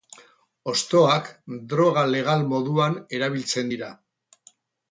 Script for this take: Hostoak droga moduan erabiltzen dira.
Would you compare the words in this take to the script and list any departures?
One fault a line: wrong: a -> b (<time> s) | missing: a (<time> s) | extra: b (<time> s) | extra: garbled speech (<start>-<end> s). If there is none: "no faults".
extra: legal (2.1 s)